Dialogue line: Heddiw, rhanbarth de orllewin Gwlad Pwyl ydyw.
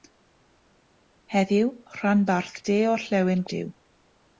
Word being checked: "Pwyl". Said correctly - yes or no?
no